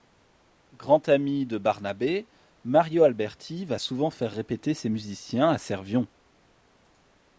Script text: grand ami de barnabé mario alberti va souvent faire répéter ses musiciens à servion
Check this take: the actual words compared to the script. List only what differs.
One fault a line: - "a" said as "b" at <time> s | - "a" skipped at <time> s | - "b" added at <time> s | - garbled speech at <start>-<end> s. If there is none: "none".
none